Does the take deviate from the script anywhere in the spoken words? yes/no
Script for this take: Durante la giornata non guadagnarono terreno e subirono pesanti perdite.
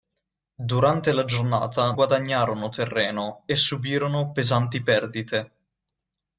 yes